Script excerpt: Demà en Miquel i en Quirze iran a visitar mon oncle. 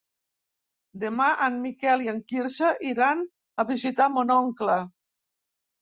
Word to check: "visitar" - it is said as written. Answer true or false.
true